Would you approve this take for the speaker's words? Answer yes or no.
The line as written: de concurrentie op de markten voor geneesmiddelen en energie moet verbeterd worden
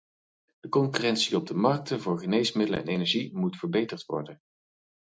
yes